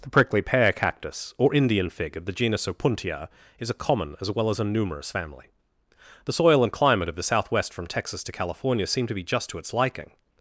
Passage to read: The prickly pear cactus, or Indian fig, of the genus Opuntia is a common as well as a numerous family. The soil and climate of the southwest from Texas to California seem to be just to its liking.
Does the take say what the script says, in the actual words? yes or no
yes